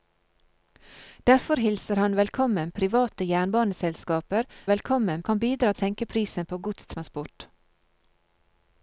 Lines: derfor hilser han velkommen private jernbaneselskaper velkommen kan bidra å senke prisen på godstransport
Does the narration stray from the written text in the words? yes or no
no